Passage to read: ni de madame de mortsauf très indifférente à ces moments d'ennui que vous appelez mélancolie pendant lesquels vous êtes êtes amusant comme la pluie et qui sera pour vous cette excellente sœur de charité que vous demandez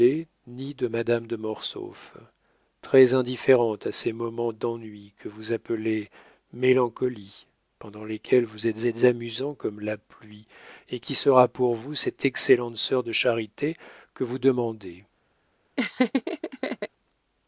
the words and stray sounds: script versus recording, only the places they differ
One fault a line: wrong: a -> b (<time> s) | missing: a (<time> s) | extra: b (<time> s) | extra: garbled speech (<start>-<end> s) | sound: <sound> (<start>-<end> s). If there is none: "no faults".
sound: laugh (15.8-16.9 s)